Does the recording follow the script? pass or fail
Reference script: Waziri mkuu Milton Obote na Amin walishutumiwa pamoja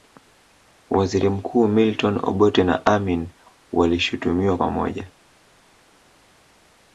pass